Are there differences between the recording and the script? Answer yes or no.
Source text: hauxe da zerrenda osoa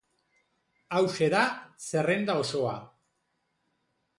no